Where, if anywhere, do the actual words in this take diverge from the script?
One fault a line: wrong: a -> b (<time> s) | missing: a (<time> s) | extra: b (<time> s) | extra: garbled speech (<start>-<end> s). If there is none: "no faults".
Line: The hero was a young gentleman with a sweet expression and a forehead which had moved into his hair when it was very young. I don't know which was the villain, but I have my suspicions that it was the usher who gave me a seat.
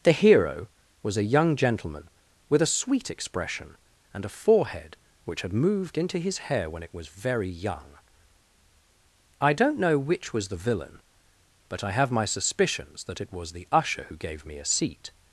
no faults